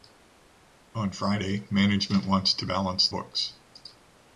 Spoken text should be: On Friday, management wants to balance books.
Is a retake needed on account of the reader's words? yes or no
no